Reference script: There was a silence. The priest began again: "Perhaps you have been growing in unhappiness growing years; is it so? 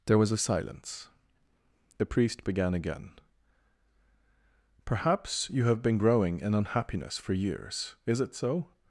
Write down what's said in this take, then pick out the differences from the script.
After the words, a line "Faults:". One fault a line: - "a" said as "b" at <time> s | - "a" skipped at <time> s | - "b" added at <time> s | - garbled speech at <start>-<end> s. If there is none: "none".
There was a silence. The priest began again: "Perhaps you have been growing in unhappiness for years; is it so?
Faults:
- "growing" said as "for" at 7.2 s